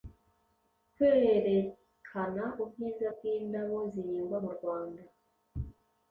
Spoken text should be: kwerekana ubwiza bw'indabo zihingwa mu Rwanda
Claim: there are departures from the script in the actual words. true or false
false